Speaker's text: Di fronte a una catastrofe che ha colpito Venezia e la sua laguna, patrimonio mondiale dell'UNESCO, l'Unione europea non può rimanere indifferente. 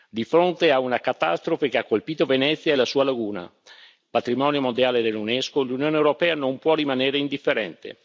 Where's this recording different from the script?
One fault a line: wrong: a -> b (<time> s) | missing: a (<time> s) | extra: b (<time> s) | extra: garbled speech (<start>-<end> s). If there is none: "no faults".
no faults